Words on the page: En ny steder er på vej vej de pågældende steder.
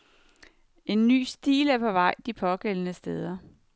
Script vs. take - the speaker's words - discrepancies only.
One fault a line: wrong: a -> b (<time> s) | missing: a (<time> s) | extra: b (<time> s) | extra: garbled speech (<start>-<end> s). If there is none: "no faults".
wrong: steder -> stil (1.2 s)
missing: vej (2.1 s)